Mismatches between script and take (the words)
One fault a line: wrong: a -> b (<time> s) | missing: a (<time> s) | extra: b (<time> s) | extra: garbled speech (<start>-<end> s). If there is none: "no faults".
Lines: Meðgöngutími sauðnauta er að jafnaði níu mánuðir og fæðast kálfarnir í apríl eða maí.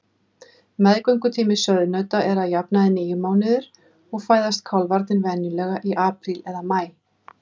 extra: venjulega (5.3 s)